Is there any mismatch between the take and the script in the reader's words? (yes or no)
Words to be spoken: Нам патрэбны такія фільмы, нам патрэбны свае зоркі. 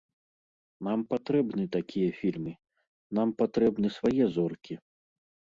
no